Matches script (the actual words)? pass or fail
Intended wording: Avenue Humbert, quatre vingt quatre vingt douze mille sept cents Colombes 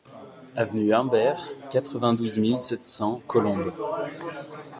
fail